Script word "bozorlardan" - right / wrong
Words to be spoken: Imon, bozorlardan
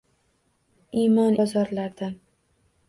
right